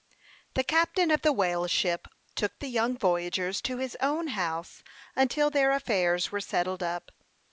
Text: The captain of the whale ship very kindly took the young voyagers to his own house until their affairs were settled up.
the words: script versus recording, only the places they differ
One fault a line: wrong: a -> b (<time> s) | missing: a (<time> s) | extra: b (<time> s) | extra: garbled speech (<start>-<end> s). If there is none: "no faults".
missing: very kindly (2.1 s)